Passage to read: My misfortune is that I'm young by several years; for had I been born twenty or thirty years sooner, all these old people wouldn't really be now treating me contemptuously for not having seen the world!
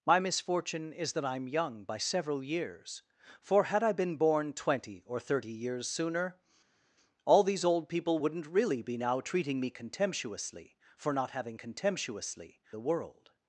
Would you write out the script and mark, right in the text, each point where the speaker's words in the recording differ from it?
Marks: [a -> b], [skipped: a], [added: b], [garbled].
My misfortune is that I'm young by several years; for had I been born twenty or thirty years sooner, all these old people wouldn't really be now treating me contemptuously for not having [seen -> contemptuously] the world!